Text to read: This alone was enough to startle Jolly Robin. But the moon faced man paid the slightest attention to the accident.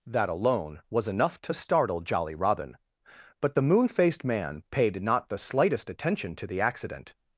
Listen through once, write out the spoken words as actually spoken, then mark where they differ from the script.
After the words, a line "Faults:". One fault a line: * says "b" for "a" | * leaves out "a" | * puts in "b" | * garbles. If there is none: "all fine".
That alone was enough to startle Jolly Robin. But the moon faced man paid not the slightest attention to the accident.
Faults:
* says "That" for "This"
* puts in "not"